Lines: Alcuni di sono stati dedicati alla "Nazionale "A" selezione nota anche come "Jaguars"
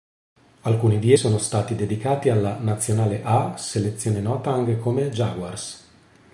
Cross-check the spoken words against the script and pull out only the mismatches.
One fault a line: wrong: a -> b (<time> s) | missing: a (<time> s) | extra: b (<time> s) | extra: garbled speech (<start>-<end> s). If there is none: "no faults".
no faults